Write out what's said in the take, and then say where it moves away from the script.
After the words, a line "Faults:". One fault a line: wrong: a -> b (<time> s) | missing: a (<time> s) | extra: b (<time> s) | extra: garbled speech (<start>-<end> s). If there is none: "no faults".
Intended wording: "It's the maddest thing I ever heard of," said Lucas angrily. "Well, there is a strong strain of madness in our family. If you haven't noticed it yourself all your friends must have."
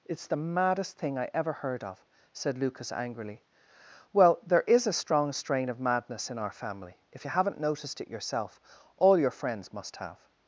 "It's the maddest thing I ever heard of," said Lucas angrily. "Well, there is a strong strain of madness in our family. If you haven't noticed it yourself all your friends must have."
Faults:
no faults